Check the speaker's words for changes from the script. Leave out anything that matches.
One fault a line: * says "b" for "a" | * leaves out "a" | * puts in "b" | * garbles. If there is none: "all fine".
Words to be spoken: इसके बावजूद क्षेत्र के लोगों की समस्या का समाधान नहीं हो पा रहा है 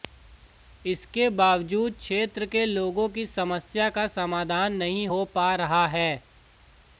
all fine